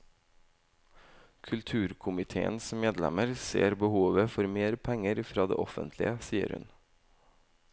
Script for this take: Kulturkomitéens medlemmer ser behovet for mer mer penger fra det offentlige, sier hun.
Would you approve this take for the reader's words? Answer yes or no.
no